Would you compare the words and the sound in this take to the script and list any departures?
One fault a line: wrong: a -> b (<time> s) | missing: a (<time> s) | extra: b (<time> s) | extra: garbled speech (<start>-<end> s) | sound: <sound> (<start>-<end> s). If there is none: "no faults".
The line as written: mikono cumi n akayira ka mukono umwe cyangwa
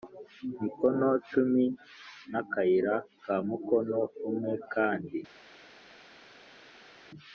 wrong: cyangwa -> kandi (4.7 s)